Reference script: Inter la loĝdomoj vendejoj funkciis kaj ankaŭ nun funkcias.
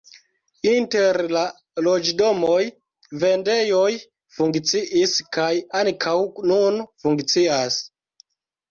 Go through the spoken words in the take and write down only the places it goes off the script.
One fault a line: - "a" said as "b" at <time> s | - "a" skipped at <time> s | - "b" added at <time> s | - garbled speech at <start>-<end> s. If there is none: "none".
none